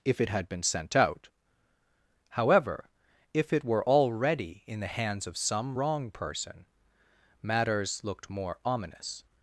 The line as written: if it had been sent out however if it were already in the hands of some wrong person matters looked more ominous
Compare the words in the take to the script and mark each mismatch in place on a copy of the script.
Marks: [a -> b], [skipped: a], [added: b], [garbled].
if it had been sent out however if it were already in the hands of some wrong person matters looked more ominous